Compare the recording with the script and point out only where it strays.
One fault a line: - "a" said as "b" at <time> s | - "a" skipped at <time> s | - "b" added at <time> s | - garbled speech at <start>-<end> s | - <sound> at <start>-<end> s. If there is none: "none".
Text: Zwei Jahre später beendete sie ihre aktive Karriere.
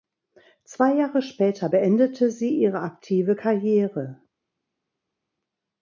none